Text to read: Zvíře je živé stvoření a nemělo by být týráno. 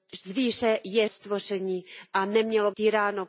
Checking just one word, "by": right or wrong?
wrong